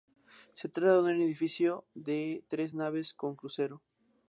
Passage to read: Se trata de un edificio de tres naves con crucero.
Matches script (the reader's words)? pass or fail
pass